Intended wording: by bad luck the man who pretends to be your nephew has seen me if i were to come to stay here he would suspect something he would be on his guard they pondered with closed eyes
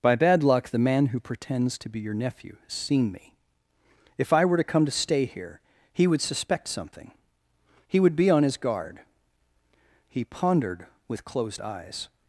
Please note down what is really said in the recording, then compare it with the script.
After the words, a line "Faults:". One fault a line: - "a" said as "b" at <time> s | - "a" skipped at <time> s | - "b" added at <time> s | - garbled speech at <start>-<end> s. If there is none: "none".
by bad luck the man who pretends to be your nephew has seen me if i were to come to stay here he would suspect something he would be on his guard he pondered with closed eyes
Faults:
- "they" said as "he" at 10.1 s